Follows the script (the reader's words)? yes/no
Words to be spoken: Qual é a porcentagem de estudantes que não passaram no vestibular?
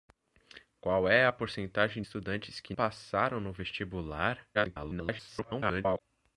no